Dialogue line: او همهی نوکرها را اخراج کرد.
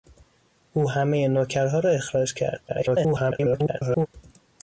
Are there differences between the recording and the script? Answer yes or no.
yes